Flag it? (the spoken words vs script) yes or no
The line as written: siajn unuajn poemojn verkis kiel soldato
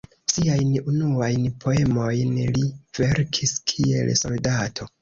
yes